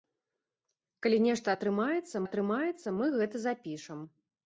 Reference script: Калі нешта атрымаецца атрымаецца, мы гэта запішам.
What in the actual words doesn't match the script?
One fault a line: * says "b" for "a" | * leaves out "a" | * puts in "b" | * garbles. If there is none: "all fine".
all fine